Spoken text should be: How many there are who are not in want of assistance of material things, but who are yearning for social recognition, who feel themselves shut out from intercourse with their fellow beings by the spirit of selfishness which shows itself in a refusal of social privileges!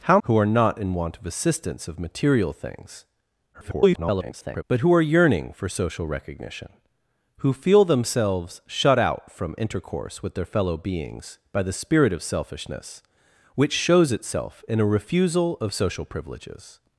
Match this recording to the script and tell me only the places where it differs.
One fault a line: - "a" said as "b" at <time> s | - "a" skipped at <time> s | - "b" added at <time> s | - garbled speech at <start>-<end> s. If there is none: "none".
- "many there are" skipped at 0.2 s
- garbled speech at 3.5-4.6 s